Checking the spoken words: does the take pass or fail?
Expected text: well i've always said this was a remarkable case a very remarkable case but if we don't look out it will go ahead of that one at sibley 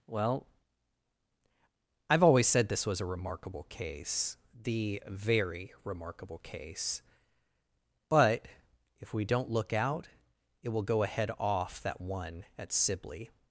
fail